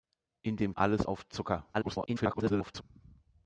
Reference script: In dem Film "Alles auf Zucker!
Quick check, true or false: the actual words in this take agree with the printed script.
false